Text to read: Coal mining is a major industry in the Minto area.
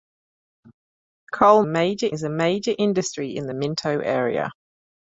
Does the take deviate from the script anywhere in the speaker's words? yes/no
yes